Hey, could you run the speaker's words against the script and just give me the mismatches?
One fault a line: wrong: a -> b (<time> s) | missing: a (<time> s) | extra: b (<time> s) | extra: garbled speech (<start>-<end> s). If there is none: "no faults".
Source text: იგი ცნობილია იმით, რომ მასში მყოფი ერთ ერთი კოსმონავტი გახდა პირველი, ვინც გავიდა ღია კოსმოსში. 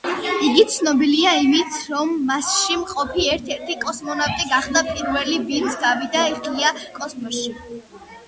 no faults